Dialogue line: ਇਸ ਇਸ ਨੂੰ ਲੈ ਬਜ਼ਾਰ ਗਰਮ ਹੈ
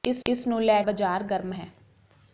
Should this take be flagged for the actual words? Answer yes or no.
no